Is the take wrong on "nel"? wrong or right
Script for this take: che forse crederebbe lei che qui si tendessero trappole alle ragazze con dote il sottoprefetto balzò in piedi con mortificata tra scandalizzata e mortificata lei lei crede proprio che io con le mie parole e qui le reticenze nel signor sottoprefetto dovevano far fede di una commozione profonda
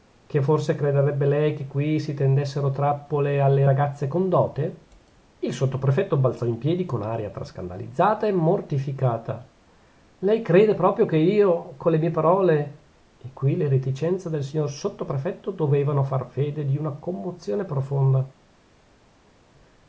wrong